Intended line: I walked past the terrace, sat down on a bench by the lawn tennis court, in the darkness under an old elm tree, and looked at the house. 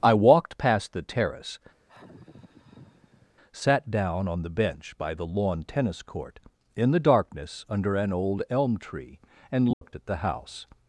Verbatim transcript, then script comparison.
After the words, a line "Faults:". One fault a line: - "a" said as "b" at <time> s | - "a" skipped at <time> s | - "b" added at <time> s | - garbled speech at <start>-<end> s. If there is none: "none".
I walked past the terrace, sat down on the bench by the lawn tennis court, in the darkness under an old elm tree, and looked at the house.
Faults:
- "a" said as "the" at 4.4 s